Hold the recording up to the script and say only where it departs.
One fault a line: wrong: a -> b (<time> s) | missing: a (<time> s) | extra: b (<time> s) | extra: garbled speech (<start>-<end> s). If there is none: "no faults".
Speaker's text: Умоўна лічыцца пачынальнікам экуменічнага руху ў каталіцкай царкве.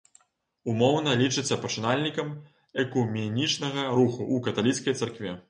no faults